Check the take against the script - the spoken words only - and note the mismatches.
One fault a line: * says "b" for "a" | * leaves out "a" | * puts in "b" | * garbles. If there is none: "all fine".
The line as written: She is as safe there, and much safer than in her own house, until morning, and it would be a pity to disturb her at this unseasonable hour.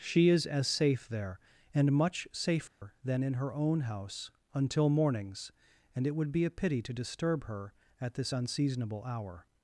* says "mornings" for "morning"